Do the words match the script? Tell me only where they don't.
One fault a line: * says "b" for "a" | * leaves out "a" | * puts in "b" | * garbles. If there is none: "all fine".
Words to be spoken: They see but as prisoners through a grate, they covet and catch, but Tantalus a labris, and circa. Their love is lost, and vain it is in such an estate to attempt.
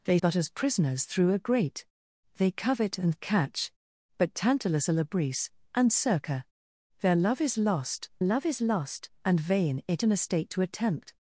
* leaves out "see"
* puts in "love is lost"
* leaves out "is in such"